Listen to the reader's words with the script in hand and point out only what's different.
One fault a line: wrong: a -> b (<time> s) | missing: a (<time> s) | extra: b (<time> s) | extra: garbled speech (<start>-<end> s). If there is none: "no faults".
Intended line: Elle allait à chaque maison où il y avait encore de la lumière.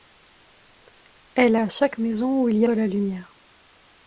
missing: allait (1.6 s)
missing: avait encore (2.7 s)